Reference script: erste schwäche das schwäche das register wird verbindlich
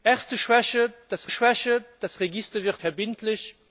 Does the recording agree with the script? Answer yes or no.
yes